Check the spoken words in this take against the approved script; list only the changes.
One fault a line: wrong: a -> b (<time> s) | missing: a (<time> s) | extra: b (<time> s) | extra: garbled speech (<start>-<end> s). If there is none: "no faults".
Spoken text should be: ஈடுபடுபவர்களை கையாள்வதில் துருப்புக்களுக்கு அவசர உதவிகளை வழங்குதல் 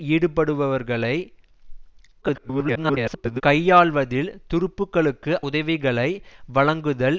extra: garbled speech (2.2-3.4 s)
missing: அவசர (5.3 s)